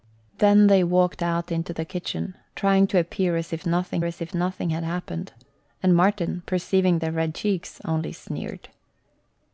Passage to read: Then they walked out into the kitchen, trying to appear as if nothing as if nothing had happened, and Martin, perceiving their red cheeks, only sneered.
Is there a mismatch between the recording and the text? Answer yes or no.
no